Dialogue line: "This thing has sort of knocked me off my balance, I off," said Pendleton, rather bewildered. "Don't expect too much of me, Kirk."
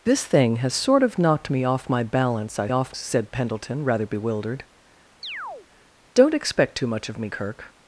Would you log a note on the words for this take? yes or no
no